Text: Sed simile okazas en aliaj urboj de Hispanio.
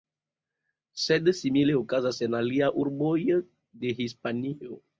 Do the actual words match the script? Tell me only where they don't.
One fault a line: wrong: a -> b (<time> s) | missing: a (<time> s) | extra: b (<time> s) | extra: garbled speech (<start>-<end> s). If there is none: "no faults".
no faults